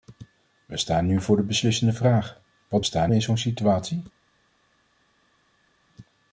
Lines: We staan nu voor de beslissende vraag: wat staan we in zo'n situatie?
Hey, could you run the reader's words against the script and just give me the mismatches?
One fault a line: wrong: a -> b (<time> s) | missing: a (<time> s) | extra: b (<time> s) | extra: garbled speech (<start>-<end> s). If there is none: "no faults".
no faults